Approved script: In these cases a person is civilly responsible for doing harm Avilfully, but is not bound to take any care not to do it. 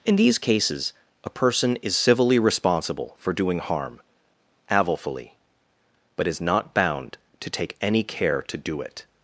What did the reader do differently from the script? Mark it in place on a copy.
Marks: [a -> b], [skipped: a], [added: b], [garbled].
In these cases a person is civilly responsible for doing harm Avilfully, but is not bound to take any care [skipped: not] to do it.